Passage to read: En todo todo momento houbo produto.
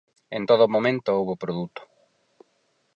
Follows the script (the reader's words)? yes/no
no